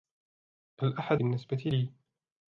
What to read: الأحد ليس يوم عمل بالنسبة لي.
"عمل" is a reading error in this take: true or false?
true